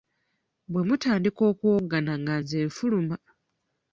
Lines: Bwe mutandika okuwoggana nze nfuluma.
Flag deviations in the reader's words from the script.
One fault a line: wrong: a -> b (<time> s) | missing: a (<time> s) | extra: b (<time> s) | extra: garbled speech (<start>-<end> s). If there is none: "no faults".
extra: nga (2.2 s)